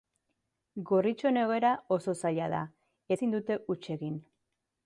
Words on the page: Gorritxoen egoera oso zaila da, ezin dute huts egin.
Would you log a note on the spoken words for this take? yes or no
no